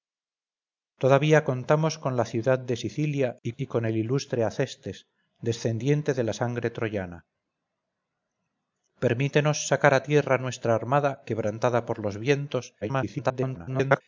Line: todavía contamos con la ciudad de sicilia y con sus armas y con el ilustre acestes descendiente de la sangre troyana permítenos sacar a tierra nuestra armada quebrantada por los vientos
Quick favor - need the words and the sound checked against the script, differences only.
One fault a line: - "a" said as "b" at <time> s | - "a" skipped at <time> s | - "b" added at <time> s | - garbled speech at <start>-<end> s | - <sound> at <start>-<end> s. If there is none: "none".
- "con sus armas" skipped at 3.5 s
- garbled speech at 12.8-14.0 s